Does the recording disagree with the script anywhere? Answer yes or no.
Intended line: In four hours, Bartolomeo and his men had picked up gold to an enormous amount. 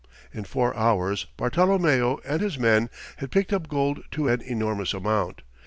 no